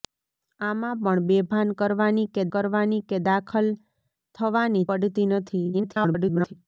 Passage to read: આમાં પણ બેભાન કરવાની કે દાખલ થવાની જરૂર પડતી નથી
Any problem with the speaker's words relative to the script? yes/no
yes